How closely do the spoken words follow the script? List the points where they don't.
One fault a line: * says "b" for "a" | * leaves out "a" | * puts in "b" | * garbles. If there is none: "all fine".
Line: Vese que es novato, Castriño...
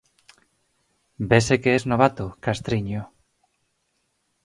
all fine